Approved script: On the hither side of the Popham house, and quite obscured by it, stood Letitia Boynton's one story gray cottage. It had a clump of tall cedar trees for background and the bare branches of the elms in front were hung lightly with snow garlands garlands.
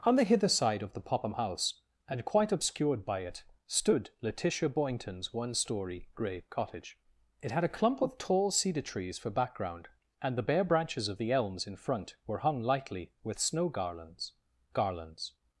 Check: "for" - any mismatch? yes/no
no